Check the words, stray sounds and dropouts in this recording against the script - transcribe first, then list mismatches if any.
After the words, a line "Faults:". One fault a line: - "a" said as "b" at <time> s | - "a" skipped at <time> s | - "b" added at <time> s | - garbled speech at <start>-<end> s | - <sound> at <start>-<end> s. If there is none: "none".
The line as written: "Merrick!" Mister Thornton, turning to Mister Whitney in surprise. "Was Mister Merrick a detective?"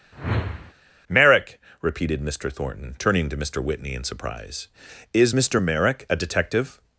"Merrick!" repeated Mister Thornton, turning to Mister Whitney in surprise. "Is Mister Merrick a detective?"
Faults:
- whoosh at 0.1-0.7 s
- "repeated" added at 1.8 s
- "Was" said as "Is" at 5.1 s